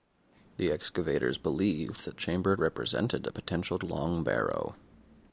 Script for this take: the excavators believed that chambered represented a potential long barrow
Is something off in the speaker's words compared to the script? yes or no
no